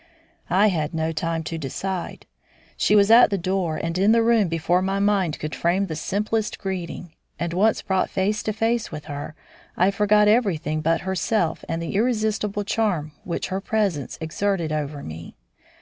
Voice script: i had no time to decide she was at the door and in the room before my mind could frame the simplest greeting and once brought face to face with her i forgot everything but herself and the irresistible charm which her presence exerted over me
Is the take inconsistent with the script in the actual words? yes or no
no